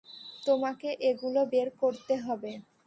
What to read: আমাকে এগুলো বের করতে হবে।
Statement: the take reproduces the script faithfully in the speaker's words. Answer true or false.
false